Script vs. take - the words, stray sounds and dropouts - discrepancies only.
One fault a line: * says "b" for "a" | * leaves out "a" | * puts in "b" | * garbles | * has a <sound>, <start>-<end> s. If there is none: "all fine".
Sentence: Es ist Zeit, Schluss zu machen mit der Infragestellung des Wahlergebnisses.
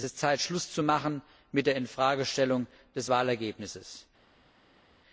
all fine